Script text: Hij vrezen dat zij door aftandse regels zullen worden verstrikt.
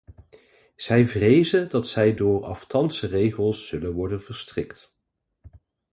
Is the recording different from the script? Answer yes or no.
yes